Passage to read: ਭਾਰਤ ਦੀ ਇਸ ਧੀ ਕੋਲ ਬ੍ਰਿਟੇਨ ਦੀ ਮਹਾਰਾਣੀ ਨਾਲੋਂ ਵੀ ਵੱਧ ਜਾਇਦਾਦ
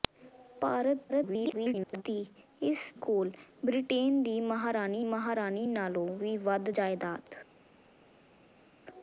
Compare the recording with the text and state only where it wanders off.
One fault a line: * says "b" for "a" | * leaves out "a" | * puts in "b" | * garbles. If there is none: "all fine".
* garbles
* leaves out "ਧੀ"
* puts in "ਮਹਾਰਾਣੀ"